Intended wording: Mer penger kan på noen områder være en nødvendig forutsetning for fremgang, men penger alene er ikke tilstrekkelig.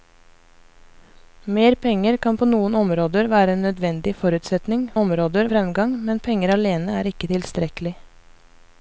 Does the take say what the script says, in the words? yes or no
no